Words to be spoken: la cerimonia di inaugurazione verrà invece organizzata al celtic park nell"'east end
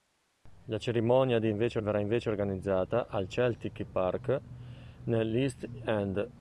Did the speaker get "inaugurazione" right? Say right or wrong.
wrong